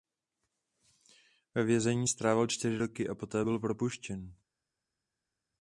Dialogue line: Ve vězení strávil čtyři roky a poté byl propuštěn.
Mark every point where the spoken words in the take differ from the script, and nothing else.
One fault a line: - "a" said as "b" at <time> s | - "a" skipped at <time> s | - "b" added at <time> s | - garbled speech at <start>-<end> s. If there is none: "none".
none